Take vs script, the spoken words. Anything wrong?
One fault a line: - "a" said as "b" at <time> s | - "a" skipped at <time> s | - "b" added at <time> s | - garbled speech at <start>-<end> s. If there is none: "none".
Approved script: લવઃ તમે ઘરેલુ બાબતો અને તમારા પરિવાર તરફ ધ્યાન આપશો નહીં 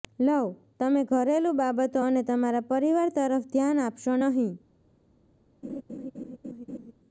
none